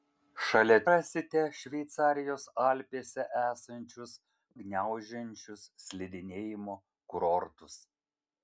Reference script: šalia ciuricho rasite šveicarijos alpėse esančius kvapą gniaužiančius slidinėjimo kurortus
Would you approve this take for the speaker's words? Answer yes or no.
no